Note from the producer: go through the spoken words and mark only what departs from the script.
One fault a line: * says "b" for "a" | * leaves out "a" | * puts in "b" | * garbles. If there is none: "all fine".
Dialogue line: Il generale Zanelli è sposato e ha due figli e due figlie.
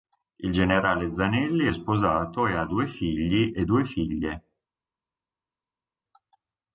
all fine